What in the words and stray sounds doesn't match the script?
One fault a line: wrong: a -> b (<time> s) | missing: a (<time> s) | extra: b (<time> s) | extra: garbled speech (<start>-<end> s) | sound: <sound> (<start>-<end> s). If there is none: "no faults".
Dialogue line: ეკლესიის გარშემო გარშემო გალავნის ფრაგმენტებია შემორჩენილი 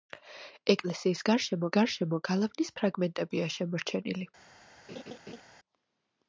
sound: laugh (4.9-5.4 s)